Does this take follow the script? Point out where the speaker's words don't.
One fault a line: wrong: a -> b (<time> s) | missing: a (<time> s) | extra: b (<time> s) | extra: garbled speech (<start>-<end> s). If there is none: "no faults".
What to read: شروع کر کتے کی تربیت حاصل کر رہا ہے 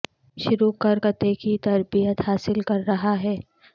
no faults